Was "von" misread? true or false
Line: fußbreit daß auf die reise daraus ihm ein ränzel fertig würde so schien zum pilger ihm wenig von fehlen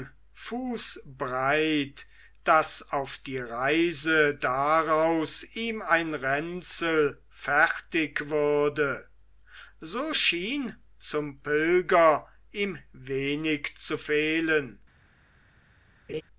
true